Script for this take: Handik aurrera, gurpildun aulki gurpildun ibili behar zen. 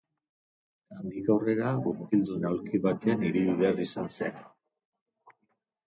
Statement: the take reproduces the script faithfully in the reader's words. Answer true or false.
false